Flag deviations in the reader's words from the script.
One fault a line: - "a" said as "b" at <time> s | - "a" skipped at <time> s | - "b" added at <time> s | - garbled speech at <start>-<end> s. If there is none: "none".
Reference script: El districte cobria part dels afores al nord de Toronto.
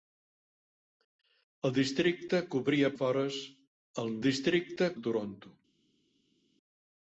- "part dels" skipped at 2.9 s
- "nord" said as "districte" at 4.2 s